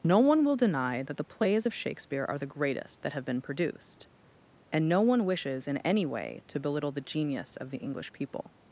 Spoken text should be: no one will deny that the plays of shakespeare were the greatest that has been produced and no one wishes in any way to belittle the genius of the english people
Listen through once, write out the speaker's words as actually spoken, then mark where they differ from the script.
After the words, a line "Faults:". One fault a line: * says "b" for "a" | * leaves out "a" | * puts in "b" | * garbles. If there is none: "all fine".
no one will deny that the plays of shakespeare are the greatest that have been produced and no one wishes in any way to belittle the genius of the english people
Faults:
* says "are" for "were"
* says "have" for "has"